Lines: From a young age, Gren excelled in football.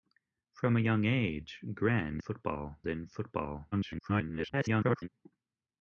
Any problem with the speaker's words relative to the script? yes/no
yes